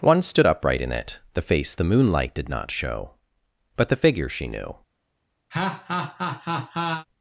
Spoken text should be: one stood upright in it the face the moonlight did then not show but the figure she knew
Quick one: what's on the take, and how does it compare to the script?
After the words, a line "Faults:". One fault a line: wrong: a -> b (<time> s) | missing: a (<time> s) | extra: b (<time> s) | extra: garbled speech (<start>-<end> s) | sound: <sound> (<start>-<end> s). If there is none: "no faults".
one stood upright in it the face the moonlight did not show but the figure she knew
Faults:
missing: then (2.5 s)
sound: laugh (5.5-7.1 s)